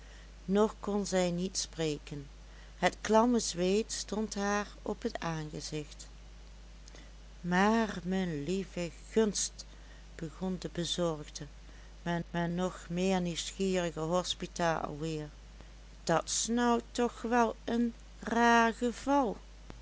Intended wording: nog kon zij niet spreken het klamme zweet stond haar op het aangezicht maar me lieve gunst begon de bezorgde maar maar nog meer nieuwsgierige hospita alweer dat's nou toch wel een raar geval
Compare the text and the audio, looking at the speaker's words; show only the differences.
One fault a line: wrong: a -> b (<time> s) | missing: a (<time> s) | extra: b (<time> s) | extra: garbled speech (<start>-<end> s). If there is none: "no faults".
no faults